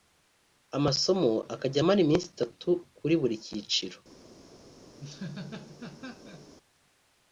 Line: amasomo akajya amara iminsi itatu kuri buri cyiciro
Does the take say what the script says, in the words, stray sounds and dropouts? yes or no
no